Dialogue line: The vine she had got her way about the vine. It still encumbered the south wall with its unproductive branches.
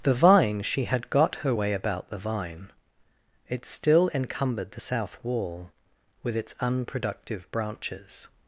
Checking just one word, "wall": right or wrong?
right